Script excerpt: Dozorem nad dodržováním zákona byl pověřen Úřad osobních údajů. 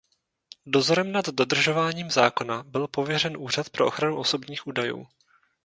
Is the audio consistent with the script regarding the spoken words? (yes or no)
no